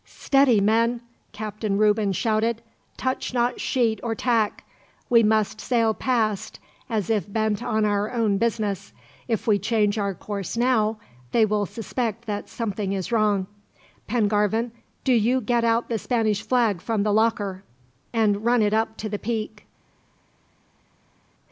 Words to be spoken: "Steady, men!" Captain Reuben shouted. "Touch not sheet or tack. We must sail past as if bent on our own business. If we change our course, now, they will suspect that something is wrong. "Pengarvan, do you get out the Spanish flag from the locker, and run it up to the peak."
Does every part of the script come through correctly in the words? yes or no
yes